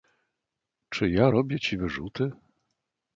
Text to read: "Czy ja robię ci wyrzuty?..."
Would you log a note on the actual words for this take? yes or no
no